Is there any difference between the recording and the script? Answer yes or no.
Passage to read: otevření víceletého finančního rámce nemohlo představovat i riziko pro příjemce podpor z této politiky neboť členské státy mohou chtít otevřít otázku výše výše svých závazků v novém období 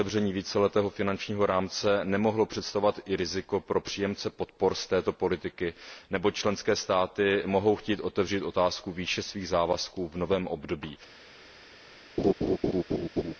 yes